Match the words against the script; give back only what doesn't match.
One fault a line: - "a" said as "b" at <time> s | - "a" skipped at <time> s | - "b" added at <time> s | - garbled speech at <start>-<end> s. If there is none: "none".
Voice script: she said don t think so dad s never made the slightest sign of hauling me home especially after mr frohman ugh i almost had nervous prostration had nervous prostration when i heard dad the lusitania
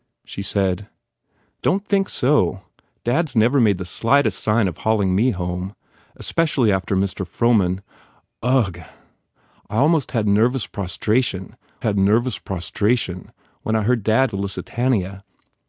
none